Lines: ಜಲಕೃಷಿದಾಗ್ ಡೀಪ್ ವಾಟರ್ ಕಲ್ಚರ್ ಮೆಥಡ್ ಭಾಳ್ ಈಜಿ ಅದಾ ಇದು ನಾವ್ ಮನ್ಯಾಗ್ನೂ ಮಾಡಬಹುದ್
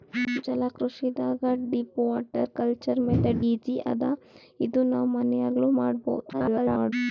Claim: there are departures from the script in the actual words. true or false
true